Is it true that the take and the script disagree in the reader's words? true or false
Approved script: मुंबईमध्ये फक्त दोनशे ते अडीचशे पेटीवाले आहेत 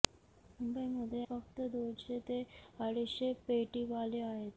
false